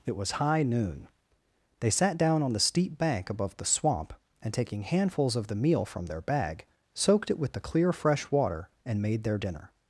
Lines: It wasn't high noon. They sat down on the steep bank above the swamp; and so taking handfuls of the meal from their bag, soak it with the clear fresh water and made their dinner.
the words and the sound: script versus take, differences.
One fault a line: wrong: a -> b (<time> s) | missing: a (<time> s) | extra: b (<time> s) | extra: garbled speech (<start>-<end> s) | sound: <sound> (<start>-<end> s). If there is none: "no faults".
wrong: wasn't -> was (0.1 s)
missing: so (4.5 s)
wrong: soak -> soaked (7.0 s)